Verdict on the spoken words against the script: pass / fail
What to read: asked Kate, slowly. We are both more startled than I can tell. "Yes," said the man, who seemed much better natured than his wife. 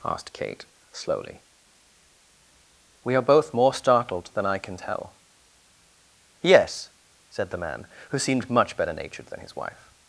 pass